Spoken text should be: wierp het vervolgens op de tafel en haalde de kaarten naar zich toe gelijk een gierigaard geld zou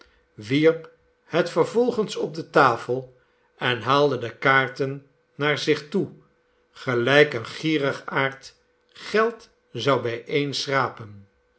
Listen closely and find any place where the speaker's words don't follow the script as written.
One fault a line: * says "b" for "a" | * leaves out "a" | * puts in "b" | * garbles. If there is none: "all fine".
all fine